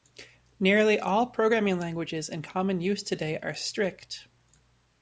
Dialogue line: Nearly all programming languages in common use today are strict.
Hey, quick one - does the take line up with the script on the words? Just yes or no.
yes